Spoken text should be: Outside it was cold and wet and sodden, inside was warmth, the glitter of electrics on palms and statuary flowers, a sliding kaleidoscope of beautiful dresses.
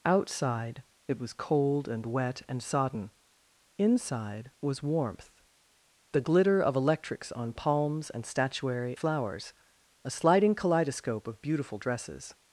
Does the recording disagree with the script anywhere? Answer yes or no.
no